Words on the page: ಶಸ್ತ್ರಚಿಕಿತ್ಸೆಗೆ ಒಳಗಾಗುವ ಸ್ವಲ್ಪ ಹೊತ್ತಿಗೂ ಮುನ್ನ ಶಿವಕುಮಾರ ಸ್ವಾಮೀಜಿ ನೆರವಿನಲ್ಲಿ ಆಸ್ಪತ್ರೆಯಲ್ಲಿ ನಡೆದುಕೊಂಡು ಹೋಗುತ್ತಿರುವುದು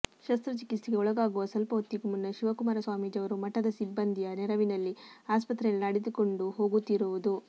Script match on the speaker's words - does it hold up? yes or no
no